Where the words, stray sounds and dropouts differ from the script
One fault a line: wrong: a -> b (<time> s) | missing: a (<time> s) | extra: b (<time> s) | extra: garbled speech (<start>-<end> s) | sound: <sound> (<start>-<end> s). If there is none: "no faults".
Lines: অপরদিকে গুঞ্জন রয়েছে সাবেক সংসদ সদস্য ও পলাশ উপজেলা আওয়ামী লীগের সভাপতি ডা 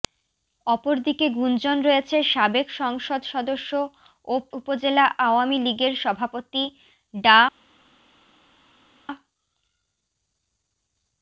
missing: পলাশ (4.3 s)